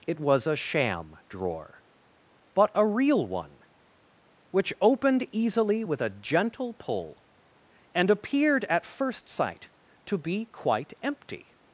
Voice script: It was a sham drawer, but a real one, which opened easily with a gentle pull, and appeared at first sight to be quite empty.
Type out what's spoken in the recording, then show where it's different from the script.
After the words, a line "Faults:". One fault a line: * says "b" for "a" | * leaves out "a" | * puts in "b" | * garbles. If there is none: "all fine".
It was a sham drawer, but a real one, which opened easily with a gentle pull, and appeared at first sight to be quite empty.
Faults:
all fine